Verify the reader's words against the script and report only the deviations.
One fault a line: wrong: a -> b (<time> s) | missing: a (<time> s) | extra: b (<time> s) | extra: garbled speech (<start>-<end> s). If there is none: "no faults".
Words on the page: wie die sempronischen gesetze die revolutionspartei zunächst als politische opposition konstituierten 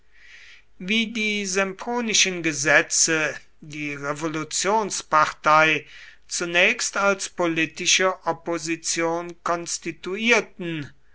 no faults